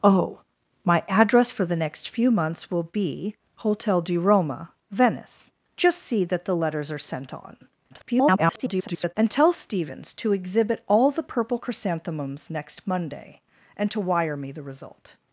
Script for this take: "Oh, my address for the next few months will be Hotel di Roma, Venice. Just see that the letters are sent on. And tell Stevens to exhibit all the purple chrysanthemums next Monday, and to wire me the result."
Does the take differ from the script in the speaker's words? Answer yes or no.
yes